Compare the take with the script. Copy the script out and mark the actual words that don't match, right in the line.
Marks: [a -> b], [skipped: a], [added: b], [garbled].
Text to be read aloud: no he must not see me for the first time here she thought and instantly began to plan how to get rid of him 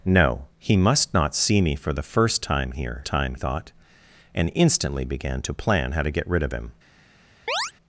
no he must not see me for the first time here [she -> time] thought and instantly began to plan how to get rid of him